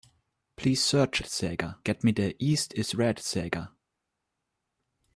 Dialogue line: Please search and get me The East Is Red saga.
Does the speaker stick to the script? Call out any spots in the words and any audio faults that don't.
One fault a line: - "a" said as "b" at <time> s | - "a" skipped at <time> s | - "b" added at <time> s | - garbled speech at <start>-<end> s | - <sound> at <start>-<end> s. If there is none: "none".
- "and" said as "saga" at 1.3 s